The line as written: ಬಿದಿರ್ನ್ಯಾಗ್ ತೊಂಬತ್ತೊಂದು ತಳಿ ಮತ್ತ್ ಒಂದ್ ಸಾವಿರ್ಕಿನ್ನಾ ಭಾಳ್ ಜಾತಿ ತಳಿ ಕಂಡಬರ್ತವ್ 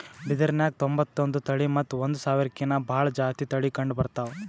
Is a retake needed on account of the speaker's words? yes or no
no